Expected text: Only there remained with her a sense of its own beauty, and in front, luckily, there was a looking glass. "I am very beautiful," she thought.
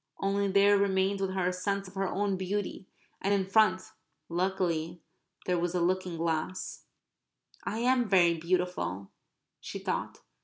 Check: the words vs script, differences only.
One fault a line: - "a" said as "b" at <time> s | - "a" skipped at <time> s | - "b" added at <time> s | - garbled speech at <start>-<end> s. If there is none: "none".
- "its" said as "her" at 1.9 s